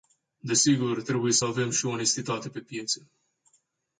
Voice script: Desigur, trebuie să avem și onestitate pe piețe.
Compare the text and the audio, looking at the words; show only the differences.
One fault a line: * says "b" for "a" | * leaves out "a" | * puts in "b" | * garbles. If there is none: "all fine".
all fine